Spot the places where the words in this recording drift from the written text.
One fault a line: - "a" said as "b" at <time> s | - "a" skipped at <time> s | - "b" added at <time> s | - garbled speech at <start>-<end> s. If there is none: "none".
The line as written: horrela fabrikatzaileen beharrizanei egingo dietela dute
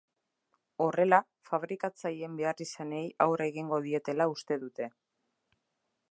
- "aurre" added at 3.3 s
- "uste" added at 4.4 s